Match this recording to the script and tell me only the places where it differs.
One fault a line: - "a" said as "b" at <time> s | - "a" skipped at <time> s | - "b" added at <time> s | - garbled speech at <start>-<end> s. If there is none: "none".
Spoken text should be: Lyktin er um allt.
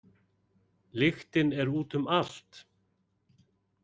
- "út" added at 1.8 s